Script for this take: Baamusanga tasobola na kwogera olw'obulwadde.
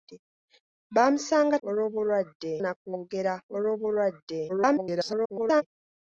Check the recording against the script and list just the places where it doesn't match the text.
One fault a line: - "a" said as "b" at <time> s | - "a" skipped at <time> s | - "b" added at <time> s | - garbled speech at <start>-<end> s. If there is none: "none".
- "tasobola" said as "olw'obulwadde" at 1.7 s
- garbled speech at 4.5-5.6 s